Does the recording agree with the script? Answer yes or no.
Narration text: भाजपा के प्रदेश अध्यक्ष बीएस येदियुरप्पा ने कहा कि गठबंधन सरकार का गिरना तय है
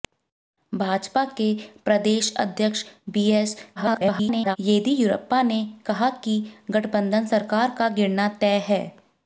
no